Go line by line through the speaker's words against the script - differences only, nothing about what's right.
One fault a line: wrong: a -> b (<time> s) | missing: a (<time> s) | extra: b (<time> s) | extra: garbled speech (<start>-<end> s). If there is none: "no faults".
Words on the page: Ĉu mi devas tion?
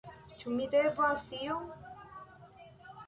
no faults